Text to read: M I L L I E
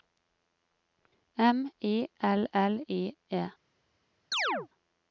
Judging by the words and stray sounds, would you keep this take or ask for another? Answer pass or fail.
fail